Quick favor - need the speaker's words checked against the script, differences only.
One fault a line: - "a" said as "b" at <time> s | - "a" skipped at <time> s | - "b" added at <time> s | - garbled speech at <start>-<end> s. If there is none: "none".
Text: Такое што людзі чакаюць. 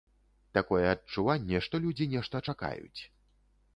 - "адчуванне" added at 0.9 s
- "нешта" added at 2.2 s